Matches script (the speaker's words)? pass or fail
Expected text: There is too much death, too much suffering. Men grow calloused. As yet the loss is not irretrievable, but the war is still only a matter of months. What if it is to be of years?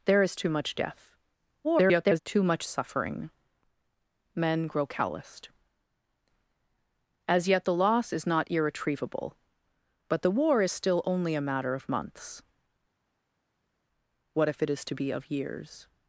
fail